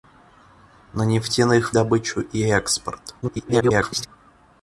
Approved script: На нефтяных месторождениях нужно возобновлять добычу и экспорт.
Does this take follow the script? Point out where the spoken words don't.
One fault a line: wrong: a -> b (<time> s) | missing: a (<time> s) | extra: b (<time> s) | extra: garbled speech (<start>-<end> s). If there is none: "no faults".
missing: месторождениях нужно возобновлять (1.8 s)
extra: garbled speech (3.2-4.1 s)